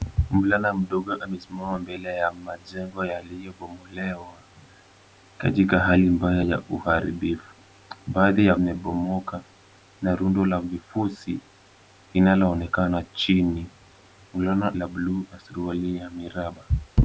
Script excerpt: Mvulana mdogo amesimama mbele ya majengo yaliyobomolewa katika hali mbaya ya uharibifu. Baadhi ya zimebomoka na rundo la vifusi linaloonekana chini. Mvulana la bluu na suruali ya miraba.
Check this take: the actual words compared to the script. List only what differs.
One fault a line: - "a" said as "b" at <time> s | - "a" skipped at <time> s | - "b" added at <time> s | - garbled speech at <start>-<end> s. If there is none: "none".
none